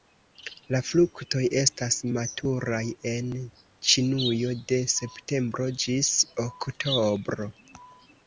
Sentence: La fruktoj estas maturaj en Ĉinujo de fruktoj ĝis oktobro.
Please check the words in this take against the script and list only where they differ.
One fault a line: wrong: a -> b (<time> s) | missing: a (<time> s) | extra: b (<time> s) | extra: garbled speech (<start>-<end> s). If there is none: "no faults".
wrong: fruktoj -> septembro (4.9 s)